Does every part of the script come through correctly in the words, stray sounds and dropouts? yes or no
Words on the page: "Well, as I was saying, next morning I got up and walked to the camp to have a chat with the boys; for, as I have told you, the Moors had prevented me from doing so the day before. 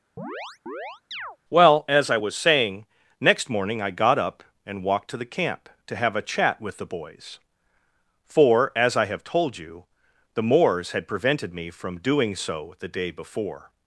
no